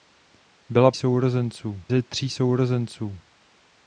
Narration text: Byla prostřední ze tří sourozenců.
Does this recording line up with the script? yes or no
no